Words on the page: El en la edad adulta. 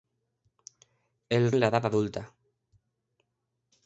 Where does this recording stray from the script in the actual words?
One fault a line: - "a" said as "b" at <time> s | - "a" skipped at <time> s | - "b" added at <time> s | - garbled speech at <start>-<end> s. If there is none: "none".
none